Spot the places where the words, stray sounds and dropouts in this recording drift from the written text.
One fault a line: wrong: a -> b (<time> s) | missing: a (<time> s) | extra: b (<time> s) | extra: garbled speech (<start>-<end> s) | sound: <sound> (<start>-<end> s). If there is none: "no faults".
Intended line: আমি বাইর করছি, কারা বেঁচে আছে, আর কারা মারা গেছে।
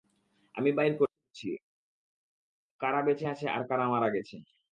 no faults